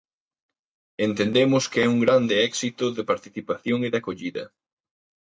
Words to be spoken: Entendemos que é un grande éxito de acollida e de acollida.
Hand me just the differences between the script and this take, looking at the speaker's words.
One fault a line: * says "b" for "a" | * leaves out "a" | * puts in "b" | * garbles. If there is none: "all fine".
* says "participación" for "acollida"